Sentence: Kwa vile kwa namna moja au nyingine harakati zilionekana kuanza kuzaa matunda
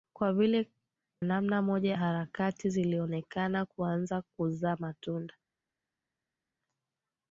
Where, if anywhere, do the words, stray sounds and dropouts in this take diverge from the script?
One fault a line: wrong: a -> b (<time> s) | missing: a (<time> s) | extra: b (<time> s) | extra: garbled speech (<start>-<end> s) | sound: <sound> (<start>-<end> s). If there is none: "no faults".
missing: kwa (0.7 s)
missing: au nyingine (2.0 s)